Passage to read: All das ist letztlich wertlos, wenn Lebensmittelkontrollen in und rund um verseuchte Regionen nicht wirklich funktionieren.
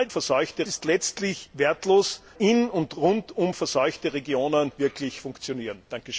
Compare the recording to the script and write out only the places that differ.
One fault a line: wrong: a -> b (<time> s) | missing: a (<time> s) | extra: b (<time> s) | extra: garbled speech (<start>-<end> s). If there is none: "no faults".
wrong: das -> verseuchte (0.1 s)
missing: wenn Lebensmittelkontrollen (2.2 s)
missing: nicht (4.7 s)